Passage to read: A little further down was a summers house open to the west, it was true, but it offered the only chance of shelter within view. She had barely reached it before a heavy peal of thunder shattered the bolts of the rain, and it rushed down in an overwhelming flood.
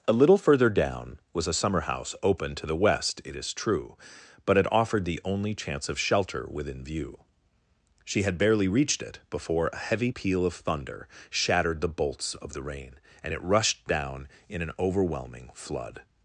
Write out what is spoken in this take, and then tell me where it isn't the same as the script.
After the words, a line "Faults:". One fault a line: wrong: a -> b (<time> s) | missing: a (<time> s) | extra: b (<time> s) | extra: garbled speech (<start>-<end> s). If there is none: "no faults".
A little further down was a summer house open to the west, it is true, but it offered the only chance of shelter within view. She had barely reached it before a heavy peal of thunder shattered the bolts of the rain, and it rushed down in an overwhelming flood.
Faults:
wrong: summers -> summer (1.5 s)
wrong: was -> is (3.4 s)